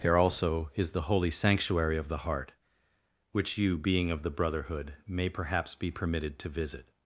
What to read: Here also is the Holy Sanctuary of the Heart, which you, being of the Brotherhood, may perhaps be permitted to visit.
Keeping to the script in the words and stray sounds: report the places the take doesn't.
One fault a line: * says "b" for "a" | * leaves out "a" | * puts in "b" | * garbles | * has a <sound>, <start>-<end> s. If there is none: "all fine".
all fine